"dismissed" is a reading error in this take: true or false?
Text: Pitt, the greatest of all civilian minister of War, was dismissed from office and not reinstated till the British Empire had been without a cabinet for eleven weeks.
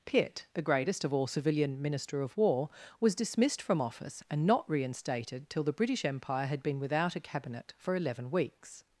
false